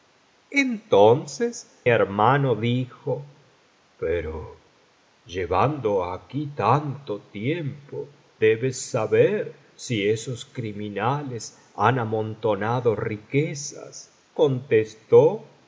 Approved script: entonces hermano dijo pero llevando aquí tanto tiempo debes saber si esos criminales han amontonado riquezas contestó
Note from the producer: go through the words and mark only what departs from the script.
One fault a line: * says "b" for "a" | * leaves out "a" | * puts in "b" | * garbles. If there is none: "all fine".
all fine